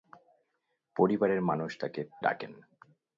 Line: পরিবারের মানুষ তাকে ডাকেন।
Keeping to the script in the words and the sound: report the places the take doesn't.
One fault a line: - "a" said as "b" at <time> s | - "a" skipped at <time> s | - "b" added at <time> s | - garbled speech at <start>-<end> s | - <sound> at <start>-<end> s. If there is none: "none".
none